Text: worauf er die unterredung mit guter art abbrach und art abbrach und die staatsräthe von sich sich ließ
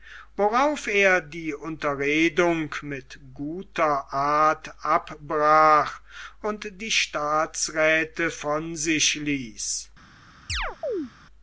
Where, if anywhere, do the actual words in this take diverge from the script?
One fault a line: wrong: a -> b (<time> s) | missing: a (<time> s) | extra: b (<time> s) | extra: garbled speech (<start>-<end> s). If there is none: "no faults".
missing: art abbrach und (6.8 s)
missing: sich (9.1 s)